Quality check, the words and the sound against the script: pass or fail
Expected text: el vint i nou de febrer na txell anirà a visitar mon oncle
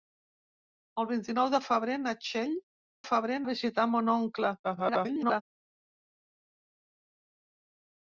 fail